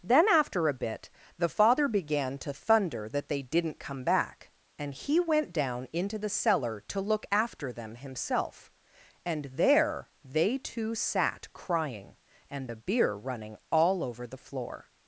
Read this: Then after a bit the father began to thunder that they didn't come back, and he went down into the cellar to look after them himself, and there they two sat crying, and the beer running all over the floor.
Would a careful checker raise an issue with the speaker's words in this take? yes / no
no